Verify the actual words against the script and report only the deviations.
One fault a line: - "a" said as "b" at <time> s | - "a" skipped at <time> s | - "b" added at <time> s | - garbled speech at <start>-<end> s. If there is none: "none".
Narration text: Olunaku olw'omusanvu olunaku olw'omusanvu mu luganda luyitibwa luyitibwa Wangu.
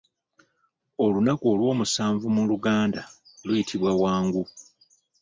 - "olunaku olw'omusanvu" skipped at 2.2 s
- "luyitibwa" skipped at 3.9 s